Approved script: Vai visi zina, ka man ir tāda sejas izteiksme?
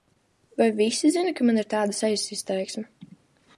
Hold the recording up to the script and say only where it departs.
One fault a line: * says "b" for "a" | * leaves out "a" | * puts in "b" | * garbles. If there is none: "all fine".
all fine